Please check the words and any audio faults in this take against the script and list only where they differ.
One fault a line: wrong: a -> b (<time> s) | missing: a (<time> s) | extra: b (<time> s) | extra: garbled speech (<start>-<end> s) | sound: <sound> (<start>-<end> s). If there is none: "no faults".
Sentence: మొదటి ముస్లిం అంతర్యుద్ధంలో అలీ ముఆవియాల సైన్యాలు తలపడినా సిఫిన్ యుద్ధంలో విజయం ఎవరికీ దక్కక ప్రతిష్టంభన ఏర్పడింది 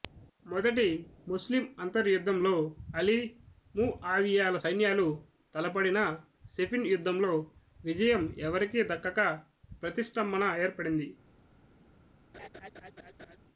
sound: laugh (12.3-13.4 s)